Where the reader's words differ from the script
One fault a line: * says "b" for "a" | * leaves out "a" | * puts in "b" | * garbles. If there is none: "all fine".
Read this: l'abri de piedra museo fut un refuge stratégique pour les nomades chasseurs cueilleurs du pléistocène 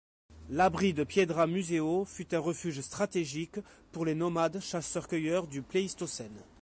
all fine